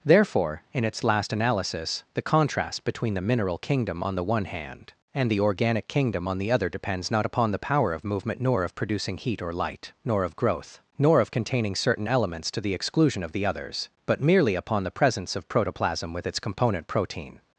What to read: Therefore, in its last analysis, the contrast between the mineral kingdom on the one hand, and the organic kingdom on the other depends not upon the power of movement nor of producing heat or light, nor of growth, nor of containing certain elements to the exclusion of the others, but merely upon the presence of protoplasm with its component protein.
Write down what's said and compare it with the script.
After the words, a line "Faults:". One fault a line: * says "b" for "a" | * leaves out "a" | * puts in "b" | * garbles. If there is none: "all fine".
Therefore, in its last analysis, the contrast between the mineral kingdom on the one hand, and the organic kingdom on the other depends not upon the power of movement nor of producing heat or light, nor of growth, nor of containing certain elements to the exclusion of the others, but merely upon the presence of protoplasm with its component protein.
Faults:
all fine